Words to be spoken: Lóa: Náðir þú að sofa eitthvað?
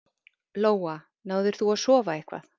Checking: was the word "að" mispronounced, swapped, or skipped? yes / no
no